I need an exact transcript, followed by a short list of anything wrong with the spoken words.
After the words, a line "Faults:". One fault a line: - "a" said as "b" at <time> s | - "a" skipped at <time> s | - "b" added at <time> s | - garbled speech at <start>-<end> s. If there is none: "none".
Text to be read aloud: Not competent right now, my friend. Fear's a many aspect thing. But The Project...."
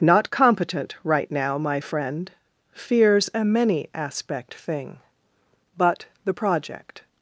Not competent right now, my friend. Fear's a many aspect thing. But The Project...."
Faults:
none